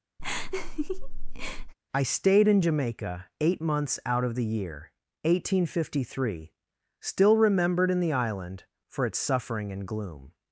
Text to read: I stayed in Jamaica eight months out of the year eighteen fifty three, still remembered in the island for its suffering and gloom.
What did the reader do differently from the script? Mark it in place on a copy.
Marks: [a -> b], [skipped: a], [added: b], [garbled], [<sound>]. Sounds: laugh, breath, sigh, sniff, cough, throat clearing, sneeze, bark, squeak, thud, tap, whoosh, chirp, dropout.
[laugh] I stayed in Jamaica eight months out of the year eighteen fifty three, still remembered in the island for its suffering and gloom.